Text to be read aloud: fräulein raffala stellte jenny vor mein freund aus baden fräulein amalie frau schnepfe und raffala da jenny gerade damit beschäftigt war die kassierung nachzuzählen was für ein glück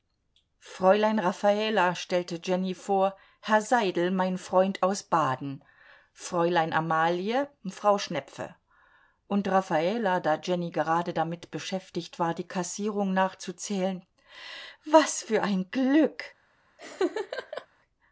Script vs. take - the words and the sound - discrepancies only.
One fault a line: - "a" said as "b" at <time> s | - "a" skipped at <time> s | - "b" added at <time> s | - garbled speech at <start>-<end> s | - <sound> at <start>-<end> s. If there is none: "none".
- "herr seidel" added at 3.4 s
- laugh at 16.8-17.7 s